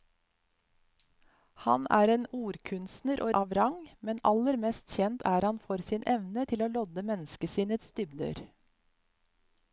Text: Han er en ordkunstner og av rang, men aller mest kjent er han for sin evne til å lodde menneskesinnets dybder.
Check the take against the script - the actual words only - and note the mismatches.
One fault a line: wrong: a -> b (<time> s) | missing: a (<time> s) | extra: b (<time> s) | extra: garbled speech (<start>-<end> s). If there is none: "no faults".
no faults